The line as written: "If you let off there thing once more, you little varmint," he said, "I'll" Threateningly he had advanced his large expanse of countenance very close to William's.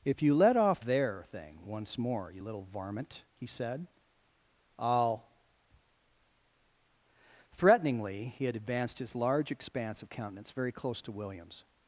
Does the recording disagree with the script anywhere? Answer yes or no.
no